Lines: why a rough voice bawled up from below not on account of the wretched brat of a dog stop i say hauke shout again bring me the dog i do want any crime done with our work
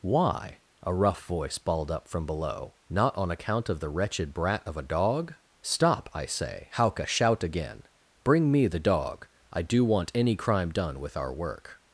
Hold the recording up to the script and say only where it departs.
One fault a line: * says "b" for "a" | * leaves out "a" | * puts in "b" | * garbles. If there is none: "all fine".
all fine